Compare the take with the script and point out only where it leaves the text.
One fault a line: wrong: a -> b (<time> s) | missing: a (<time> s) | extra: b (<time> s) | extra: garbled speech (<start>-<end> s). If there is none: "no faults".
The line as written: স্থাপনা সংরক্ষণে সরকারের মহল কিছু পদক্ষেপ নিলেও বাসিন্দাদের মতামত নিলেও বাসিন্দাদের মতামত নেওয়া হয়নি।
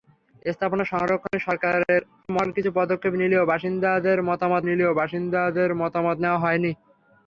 no faults